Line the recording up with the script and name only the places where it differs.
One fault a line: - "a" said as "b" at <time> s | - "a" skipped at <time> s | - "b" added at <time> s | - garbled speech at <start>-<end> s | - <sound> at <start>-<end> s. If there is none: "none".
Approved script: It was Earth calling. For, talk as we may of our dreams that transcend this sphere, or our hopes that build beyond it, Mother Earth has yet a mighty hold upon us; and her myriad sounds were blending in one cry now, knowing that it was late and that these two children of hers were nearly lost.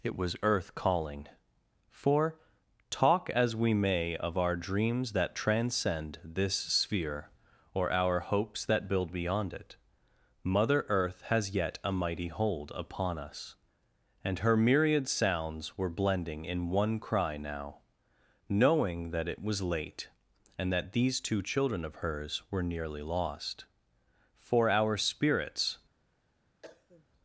- "For our spirits" added at 24.3 s
- cough at 26.6-27.1 s